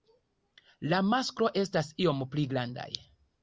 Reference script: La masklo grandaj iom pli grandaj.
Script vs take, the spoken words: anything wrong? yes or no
yes